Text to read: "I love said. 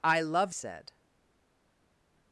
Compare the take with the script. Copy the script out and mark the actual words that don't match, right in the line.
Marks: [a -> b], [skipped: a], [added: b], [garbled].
"I love said.